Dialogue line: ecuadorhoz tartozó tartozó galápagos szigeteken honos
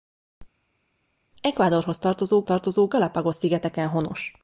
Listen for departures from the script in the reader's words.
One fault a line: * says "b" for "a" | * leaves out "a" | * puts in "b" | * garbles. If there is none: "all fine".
all fine